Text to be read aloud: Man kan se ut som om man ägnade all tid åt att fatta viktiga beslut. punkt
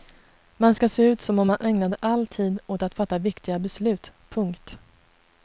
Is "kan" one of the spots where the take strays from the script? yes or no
yes